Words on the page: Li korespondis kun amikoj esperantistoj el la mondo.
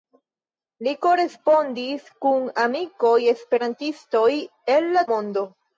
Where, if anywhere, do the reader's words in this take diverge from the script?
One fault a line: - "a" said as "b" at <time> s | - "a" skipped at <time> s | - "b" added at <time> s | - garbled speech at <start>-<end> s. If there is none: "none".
none